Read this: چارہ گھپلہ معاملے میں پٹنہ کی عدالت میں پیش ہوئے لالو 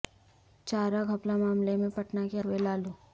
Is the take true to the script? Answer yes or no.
no